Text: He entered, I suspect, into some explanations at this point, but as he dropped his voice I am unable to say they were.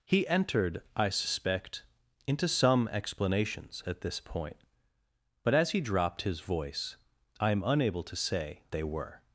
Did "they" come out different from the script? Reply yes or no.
no